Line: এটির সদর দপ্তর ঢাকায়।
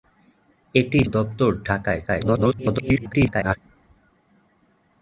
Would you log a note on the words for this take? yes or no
yes